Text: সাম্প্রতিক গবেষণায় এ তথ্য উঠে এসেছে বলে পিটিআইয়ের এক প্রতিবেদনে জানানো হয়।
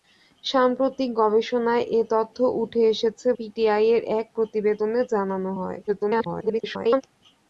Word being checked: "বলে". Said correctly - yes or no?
no